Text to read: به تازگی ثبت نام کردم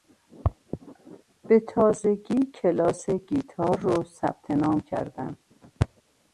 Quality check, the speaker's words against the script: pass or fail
fail